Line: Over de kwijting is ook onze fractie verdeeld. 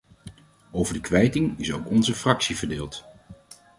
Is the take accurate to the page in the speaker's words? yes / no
yes